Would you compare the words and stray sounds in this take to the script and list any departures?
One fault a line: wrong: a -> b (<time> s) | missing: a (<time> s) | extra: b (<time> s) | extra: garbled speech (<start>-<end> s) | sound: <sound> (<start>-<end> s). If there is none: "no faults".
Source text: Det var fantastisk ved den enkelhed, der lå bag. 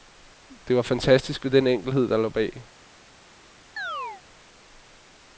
sound: chirp (3.8-4.2 s)